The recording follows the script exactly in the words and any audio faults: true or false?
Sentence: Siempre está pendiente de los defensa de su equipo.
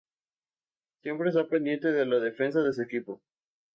false